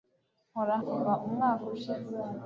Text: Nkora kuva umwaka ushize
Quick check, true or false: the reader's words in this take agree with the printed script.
true